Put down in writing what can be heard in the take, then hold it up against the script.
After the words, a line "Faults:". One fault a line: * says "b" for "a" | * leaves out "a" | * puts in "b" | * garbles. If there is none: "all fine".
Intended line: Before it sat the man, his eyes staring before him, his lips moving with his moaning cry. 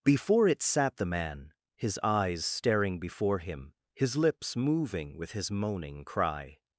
Before it sat the man, his eyes staring before him, his lips moving with his moaning cry.
Faults:
all fine